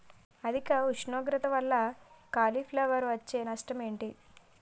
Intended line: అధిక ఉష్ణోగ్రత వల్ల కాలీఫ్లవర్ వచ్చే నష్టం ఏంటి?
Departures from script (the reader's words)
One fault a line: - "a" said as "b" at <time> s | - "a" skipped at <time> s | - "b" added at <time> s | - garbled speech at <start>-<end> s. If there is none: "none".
none